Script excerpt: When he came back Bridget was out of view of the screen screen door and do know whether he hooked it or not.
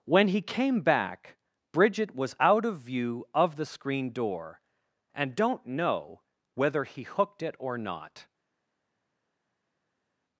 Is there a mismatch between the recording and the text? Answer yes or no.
yes